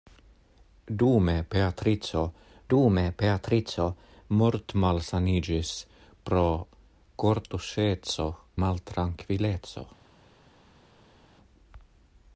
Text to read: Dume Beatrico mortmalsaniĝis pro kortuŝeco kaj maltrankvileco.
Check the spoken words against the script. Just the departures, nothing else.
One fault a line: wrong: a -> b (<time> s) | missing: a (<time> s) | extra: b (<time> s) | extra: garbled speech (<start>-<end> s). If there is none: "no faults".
extra: dume Beatrico (2.7 s)
missing: kaj (8.3 s)